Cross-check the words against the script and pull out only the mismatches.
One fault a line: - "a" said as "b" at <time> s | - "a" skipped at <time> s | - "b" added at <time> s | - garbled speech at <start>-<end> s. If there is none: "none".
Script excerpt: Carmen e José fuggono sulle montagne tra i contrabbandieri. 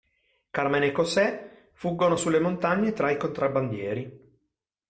none